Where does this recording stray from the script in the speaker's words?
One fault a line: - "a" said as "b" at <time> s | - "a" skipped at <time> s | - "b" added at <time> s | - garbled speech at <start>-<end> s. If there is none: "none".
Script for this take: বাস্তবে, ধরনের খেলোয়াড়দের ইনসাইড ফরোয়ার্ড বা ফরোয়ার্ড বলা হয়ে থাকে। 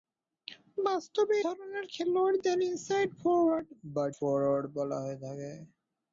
none